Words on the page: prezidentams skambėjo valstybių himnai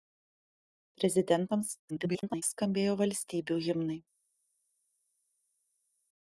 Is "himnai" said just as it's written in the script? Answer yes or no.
yes